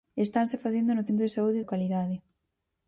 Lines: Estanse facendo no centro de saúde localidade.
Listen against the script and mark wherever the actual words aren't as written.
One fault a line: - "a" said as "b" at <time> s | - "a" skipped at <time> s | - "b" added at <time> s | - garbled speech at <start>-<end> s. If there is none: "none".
none